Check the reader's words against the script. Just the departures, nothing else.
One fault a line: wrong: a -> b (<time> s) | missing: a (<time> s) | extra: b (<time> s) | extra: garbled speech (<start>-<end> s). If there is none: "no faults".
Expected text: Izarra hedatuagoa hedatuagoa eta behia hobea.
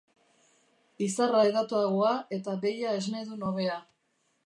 missing: hedatuagoa (2.1 s)
extra: esnedun (3.0 s)